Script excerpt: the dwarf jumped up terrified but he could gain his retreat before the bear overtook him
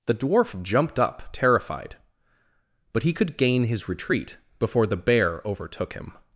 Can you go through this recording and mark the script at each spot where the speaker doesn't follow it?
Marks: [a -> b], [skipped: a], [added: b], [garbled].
the dwarf jumped up terrified but he could gain his retreat before the bear overtook him